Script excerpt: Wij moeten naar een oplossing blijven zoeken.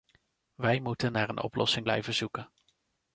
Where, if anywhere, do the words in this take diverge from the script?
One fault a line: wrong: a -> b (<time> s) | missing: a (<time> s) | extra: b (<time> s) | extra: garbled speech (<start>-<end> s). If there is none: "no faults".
no faults